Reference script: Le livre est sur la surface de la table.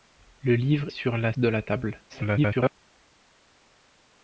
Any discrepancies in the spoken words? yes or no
yes